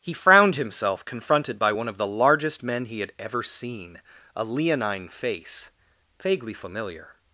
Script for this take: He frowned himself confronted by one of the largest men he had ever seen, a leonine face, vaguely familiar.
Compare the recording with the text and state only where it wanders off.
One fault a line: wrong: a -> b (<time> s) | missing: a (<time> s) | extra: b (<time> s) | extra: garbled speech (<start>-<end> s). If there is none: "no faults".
no faults